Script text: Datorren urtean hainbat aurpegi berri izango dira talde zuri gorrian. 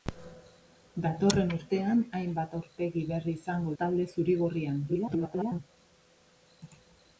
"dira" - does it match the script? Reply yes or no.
no